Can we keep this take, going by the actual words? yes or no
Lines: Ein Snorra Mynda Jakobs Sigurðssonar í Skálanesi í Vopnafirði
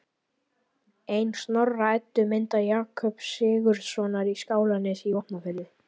no